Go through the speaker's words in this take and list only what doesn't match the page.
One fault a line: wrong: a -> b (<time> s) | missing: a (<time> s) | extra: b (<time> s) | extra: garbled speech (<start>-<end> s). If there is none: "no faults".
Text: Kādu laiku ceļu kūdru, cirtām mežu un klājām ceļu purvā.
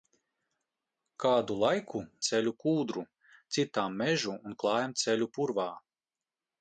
no faults